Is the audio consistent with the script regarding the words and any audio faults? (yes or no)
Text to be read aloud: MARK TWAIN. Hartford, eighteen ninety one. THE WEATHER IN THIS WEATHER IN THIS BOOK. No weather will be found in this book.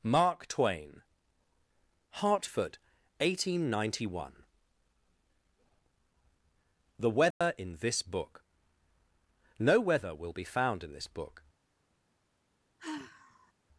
no